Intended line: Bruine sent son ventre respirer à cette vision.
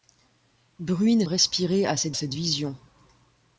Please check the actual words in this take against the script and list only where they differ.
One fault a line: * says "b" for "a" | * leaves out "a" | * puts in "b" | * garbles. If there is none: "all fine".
* leaves out "sent son ventre"
* puts in "cette"